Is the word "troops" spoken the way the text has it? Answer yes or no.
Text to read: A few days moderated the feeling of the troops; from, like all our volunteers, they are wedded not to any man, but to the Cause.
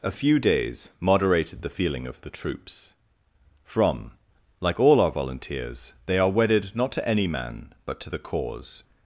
yes